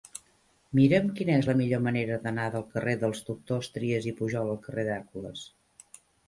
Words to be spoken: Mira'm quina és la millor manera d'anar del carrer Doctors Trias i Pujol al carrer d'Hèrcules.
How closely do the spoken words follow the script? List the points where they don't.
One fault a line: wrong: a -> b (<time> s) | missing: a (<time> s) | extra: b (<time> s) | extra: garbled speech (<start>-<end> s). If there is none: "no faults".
extra: dels (3.0 s)